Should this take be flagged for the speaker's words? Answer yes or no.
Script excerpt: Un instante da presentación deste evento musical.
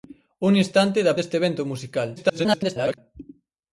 yes